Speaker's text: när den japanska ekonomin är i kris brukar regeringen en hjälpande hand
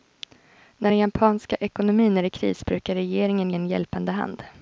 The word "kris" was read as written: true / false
true